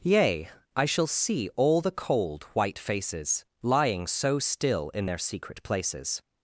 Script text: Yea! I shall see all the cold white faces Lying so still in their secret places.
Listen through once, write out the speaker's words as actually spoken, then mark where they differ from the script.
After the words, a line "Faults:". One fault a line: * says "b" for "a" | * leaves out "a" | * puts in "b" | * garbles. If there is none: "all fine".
Yea! I shall see all the cold white faces Lying so still in their secret places.
Faults:
all fine